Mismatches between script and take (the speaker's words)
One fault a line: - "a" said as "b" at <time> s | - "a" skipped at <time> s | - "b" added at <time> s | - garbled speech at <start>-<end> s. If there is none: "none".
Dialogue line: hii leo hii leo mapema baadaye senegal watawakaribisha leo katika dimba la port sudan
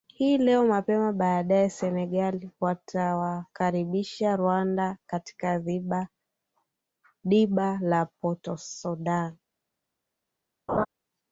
- "hii leo" skipped at 0.7 s
- "leo" said as "rwanda" at 4.3 s